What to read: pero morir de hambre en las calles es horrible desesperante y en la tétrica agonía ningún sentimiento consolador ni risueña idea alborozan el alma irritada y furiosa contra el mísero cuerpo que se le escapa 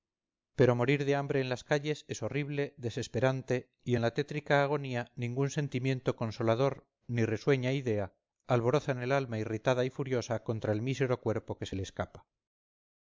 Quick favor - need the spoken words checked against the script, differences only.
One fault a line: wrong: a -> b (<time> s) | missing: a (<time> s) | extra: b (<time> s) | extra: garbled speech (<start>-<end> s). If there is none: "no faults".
no faults